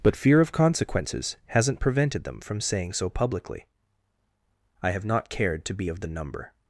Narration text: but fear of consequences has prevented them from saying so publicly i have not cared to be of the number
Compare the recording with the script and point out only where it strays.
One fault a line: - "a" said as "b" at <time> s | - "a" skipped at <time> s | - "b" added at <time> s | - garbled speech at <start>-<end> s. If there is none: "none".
- "has" said as "hasn't" at 1.5 s